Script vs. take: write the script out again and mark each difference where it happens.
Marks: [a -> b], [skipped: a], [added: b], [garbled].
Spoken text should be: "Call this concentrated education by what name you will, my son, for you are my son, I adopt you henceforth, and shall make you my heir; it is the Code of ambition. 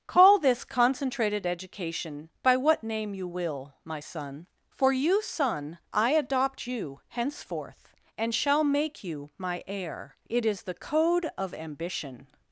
"Call this concentrated education by what name you will, my son, for you [skipped: are my] son, I adopt you henceforth, and shall make you my heir; it is the Code of ambition.